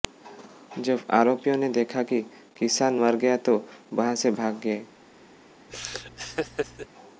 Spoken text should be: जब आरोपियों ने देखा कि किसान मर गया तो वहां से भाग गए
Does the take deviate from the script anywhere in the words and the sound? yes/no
yes